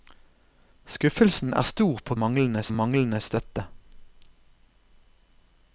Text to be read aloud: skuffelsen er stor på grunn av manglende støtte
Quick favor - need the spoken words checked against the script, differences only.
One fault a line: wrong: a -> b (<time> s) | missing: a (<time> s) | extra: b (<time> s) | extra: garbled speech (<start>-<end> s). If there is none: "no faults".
wrong: grunn -> manglende (2.2 s)